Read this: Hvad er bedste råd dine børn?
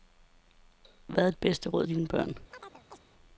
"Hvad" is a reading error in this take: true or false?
false